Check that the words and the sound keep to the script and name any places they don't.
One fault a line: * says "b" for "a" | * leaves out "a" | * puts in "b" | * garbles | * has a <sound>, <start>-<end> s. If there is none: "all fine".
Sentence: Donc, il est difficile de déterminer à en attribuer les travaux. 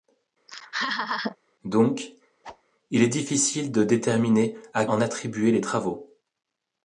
* has a laugh, 0.5-1.4 s
* has a whoosh, 2.4-2.6 s